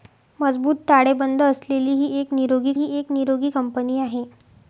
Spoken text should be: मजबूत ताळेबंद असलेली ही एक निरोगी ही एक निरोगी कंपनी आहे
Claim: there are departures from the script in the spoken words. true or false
false